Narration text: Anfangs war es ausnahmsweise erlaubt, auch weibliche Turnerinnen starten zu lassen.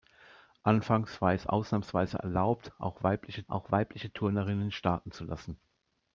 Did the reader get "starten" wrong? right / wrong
right